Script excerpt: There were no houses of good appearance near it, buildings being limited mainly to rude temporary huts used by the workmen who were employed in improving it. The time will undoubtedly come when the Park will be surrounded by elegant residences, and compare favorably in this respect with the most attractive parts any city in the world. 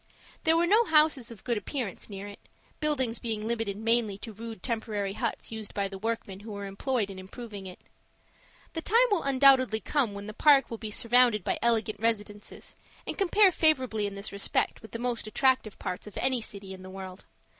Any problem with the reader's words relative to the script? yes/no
yes